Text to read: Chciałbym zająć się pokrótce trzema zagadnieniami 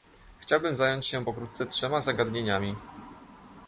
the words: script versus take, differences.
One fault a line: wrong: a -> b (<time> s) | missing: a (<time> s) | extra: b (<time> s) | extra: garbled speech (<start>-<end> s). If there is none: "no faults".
no faults